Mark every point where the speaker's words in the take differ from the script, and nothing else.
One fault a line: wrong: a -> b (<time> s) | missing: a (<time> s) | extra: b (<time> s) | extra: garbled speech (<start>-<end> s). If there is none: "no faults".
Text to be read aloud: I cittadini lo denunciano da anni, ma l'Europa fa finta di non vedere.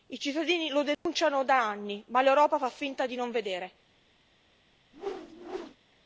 no faults